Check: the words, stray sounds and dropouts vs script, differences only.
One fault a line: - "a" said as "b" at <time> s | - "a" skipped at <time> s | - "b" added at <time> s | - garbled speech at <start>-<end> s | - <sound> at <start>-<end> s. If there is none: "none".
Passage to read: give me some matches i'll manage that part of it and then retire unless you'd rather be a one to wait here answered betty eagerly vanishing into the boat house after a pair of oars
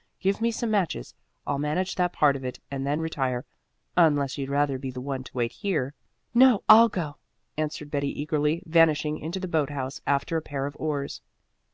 - "a" said as "the" at 4.9 s
- "no i'll go" added at 6.3 s